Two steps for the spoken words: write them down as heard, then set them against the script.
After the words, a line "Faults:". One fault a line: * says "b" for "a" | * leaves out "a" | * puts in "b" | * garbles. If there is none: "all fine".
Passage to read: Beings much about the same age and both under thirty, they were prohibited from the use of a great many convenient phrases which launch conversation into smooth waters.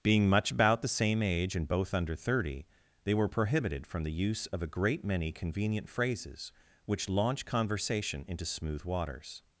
Being much about the same age and both under thirty, they were prohibited from the use of a great many convenient phrases which launch conversation into smooth waters.
Faults:
* says "Being" for "Beings"